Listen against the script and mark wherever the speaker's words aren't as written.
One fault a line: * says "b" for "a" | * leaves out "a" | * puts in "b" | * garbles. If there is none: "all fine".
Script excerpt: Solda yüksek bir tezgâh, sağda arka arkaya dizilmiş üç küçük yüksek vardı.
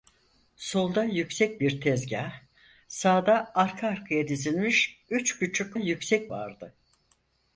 all fine